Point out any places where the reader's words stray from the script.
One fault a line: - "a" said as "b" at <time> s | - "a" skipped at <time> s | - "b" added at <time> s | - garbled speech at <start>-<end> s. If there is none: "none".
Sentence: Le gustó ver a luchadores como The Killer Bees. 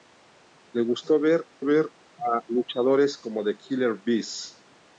- "ver" added at 1.6 s